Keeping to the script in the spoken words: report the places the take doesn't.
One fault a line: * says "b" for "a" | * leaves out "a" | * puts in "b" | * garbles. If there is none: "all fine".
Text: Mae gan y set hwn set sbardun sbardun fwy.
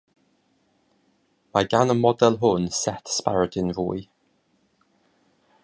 * says "model" for "set"
* leaves out "sbardun"